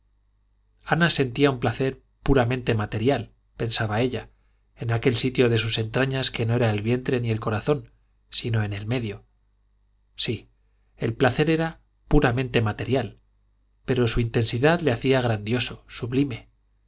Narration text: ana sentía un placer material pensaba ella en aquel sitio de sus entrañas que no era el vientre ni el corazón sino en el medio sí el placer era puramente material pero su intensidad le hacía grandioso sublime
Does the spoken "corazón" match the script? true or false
true